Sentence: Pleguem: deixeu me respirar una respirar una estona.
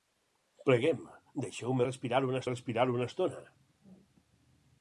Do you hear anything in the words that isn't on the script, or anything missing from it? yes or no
no